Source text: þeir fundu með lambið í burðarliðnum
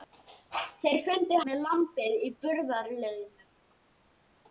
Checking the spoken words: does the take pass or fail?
pass